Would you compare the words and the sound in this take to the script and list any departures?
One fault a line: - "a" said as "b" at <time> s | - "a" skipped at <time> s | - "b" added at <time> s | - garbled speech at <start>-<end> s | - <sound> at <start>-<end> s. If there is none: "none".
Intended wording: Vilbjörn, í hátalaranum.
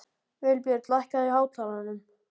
- "lækkaðu" added at 0.9 s